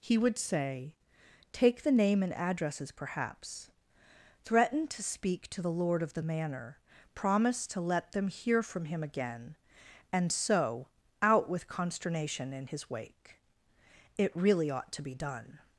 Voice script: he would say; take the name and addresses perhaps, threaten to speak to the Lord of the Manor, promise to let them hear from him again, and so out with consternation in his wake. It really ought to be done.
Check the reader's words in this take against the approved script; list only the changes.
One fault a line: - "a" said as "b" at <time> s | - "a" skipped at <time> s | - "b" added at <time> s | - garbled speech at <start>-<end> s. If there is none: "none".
none